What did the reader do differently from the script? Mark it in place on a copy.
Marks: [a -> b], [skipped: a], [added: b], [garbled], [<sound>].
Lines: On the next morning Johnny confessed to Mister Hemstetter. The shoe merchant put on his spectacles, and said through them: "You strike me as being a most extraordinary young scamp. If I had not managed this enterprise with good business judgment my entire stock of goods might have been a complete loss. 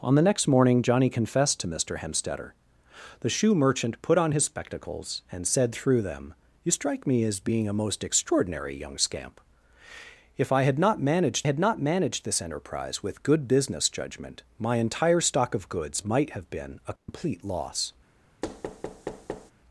On the next morning Johnny confessed to Mister Hemstetter. The shoe merchant put on his spectacles, and said through them: "You strike me as being a most extraordinary young scamp. If I had not managed [added: had not managed] this enterprise with good business judgment my entire stock of goods might have been a complete [dropout] loss. [thud]